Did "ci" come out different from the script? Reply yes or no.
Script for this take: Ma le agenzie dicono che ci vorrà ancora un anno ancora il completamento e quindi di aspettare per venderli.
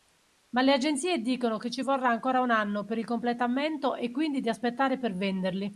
no